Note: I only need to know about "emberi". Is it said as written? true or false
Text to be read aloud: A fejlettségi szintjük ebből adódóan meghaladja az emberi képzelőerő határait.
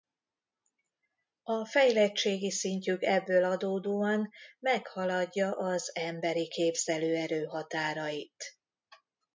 true